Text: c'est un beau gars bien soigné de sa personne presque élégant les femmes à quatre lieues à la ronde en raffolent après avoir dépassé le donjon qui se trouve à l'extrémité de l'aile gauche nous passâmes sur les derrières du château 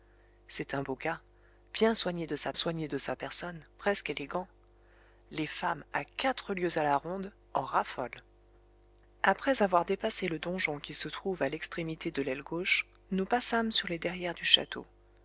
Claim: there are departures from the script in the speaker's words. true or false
true